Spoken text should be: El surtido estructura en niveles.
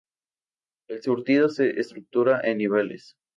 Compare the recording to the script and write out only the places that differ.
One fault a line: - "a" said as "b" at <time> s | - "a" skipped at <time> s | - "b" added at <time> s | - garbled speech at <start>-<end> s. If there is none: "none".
- "se" added at 1.5 s